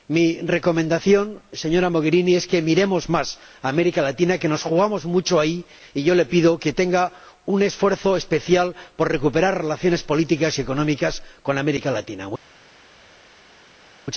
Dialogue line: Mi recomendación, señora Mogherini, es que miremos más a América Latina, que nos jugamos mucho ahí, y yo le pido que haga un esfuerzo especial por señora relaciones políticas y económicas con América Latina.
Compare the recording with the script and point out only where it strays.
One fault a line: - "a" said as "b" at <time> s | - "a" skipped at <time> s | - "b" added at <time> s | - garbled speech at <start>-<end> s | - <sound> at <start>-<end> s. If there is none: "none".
- "señora" said as "recuperar" at 9.1 s